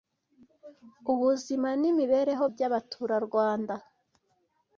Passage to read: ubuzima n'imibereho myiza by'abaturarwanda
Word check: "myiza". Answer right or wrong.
wrong